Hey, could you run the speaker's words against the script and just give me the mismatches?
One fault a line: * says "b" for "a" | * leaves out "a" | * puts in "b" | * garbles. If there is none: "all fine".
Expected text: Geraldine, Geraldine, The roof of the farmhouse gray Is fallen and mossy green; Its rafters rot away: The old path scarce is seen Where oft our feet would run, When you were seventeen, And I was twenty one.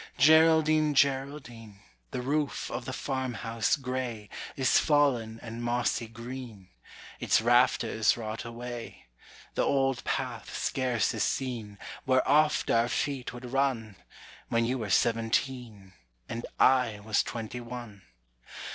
all fine